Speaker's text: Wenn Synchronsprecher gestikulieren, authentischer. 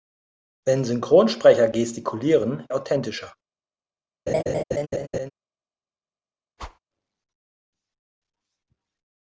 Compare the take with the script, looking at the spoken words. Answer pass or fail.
pass